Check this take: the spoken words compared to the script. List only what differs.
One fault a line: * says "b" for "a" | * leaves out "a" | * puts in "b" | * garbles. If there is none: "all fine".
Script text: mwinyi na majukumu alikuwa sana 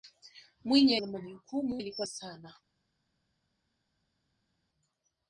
all fine